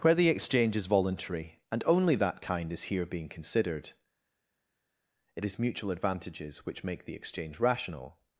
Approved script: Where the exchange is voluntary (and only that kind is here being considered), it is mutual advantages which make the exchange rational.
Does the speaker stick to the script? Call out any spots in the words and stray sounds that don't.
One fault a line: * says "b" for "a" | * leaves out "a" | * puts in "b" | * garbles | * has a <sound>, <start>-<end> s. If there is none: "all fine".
all fine